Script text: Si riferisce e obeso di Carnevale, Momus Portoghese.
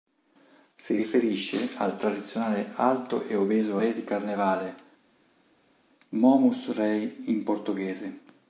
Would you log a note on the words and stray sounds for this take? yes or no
yes